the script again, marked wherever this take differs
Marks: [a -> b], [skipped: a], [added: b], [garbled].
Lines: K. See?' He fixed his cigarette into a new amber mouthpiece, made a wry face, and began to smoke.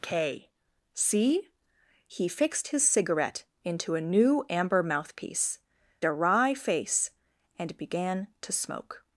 K. See?' He fixed his cigarette into a new amber mouthpiece, [skipped: made] a wry face, and began to smoke.